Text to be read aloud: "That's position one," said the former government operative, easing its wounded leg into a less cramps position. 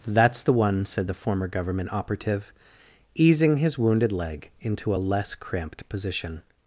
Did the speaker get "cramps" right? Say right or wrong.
wrong